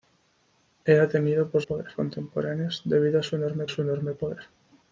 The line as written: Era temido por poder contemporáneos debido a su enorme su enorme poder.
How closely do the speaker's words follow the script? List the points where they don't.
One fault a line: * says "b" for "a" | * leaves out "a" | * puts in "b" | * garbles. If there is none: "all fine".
all fine